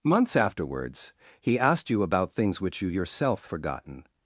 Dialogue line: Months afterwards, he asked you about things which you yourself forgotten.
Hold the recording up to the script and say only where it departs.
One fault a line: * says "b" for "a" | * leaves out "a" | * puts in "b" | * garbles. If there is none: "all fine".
all fine